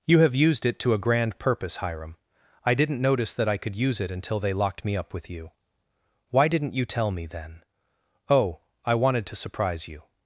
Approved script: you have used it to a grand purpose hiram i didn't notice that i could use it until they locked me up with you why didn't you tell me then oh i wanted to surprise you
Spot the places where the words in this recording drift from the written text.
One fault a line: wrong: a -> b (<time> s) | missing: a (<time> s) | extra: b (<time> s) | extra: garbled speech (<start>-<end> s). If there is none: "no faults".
no faults